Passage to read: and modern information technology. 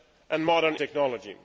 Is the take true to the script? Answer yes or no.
no